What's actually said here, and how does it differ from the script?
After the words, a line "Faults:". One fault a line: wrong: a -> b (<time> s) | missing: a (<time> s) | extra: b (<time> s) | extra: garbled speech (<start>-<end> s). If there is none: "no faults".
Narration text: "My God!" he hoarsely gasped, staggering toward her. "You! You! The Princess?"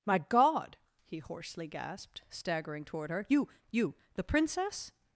"My God!" he hoarsely gasped, staggering toward her. "You! You! The Princess?"
Faults:
no faults